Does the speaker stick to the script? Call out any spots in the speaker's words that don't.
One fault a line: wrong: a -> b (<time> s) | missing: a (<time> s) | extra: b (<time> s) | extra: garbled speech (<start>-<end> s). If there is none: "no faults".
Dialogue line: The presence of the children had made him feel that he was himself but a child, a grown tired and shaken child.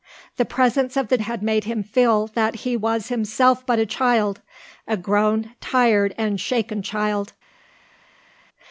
missing: children (1.2 s)